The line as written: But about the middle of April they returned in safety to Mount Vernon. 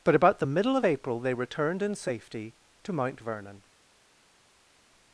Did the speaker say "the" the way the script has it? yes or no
yes